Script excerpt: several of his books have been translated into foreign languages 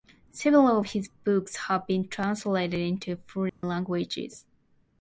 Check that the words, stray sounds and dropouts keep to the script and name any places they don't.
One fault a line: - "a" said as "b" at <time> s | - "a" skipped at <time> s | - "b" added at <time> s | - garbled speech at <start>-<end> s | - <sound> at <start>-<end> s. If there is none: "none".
- dropout at 3.5-3.6 s